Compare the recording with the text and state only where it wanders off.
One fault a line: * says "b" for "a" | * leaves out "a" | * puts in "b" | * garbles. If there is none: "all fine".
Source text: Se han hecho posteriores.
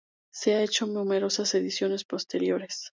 * puts in "numerosas ediciones"